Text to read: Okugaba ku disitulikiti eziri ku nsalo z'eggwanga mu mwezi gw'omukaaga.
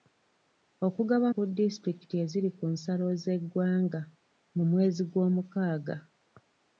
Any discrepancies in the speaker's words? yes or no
no